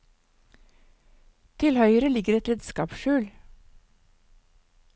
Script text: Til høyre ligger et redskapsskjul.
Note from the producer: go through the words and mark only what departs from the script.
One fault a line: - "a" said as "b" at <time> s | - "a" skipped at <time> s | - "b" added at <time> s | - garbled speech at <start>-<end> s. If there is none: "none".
none